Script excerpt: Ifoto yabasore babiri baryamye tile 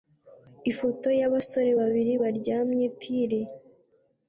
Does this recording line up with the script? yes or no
yes